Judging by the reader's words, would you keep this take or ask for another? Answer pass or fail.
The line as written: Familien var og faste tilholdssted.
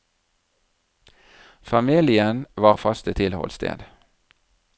pass